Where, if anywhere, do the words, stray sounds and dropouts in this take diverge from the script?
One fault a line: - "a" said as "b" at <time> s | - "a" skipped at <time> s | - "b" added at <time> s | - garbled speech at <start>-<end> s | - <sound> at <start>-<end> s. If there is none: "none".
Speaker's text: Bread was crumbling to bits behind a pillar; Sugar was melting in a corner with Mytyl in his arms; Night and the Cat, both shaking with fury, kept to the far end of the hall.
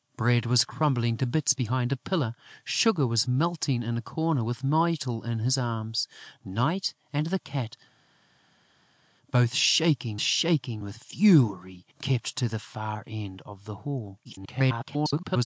- "shaking" added at 10.2 s
- garbled speech at 14.2-15.5 s